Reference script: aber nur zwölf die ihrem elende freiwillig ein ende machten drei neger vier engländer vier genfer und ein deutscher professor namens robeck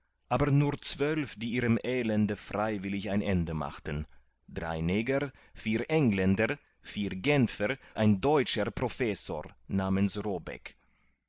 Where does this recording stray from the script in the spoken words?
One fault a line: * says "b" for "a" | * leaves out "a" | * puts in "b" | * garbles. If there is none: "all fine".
* leaves out "und"